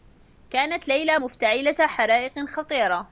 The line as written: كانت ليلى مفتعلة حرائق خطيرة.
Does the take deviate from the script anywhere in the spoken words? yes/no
no